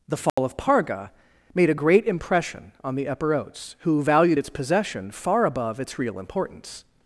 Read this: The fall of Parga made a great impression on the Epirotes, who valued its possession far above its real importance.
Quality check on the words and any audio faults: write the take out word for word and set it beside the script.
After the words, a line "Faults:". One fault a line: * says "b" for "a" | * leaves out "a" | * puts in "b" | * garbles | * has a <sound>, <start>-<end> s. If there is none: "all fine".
The fall of Parga made a great impression on the Epirotes, who valued its possession far above its real importance.
Faults:
* has a dropout, 0.3-0.4 s